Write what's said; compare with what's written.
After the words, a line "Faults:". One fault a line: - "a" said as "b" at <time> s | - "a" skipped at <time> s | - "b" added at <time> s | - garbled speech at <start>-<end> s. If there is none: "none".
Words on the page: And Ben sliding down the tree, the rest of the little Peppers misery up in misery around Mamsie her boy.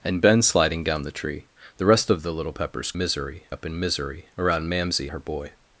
And Ben sliding down the tree, the rest of the little Peppers misery up in misery around Mamsie her boy.
Faults:
none